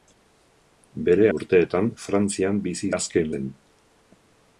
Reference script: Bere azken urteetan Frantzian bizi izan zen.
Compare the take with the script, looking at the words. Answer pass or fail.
fail